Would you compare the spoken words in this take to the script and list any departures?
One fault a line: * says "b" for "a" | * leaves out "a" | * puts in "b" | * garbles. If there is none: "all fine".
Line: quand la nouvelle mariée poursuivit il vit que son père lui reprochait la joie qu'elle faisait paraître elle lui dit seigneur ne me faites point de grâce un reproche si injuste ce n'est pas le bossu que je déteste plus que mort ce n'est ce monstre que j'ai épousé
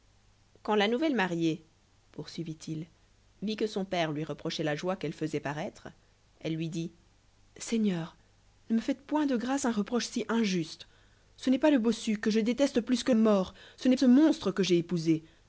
all fine